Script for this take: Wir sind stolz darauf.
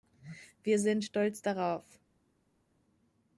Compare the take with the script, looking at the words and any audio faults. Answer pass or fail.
pass